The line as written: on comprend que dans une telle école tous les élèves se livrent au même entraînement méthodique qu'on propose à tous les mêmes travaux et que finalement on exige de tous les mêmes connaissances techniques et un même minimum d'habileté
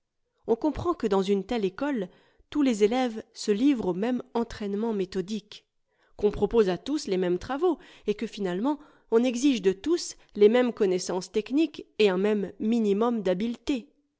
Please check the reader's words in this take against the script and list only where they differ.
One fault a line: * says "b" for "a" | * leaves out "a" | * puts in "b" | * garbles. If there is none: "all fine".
all fine